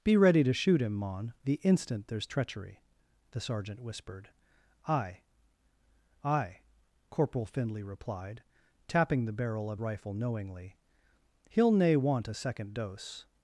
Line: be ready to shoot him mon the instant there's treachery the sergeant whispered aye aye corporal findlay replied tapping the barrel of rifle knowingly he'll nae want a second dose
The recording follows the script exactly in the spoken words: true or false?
true